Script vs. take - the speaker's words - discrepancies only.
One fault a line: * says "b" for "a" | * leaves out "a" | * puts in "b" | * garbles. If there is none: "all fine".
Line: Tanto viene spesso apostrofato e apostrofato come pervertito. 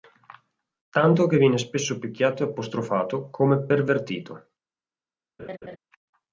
* puts in "che"
* says "picchiato" for "apostrofato"